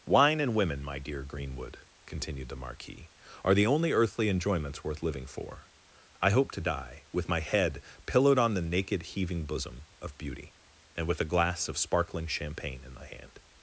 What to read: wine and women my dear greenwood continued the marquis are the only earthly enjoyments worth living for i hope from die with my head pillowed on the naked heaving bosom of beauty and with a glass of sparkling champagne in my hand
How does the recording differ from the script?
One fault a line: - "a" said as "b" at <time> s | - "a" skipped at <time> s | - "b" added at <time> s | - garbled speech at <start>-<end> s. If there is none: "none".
- "from" said as "to" at 6.5 s